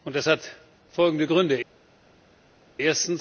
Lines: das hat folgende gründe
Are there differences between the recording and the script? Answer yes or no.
no